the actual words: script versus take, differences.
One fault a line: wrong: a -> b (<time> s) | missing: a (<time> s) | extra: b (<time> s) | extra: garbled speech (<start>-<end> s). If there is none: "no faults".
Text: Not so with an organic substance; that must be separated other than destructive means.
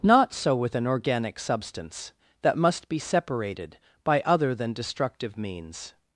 extra: by (4.0 s)